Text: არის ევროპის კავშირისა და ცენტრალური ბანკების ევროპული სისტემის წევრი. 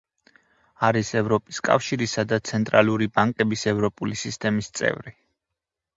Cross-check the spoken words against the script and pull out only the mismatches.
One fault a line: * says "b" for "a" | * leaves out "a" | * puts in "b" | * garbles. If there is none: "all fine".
all fine